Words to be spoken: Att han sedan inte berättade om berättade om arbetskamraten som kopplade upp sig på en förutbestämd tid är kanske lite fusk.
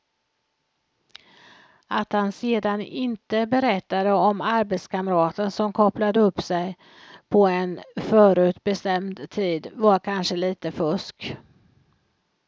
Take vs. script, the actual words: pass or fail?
fail